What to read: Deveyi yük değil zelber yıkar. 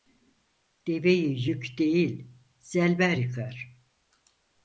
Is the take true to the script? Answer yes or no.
yes